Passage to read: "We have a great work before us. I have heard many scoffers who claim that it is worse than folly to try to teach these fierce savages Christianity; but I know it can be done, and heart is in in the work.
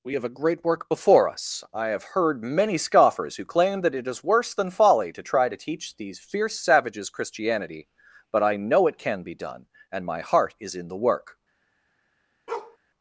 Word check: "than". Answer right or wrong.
right